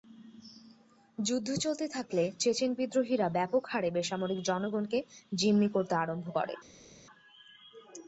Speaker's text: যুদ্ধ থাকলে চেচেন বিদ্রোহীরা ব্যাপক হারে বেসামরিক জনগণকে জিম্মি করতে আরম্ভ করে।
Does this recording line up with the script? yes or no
no